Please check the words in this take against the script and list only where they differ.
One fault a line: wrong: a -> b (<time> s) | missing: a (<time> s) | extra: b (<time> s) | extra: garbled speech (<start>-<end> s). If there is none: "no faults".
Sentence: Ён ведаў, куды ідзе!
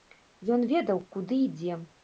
no faults